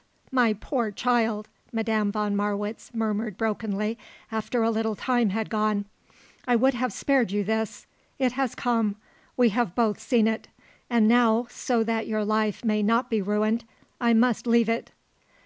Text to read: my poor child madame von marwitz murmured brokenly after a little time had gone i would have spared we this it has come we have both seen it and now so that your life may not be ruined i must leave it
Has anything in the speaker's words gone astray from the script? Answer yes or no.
yes